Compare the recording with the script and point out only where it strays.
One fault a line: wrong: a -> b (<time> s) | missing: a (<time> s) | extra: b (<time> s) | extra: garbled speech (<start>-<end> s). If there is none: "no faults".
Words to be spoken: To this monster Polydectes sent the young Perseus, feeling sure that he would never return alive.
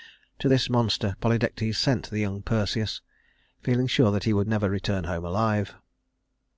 extra: home (5.0 s)